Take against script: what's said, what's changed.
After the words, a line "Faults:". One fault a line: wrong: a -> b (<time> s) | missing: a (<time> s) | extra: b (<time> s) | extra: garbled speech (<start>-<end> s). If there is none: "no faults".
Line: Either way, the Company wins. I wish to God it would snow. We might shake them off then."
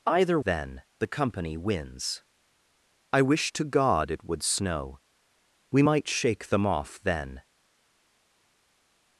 Either then, the Company wins. I wish to God it would snow. We might shake them off then."
Faults:
wrong: way -> then (0.4 s)